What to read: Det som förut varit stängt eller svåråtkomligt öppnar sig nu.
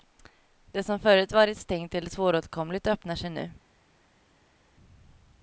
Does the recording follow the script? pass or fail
pass